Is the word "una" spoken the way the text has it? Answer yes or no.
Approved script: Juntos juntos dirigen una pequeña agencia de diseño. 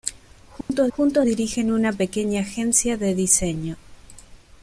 yes